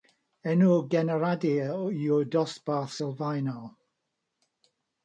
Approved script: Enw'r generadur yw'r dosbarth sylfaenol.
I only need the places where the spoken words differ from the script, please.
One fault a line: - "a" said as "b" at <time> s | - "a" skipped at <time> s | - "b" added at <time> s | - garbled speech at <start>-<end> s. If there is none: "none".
none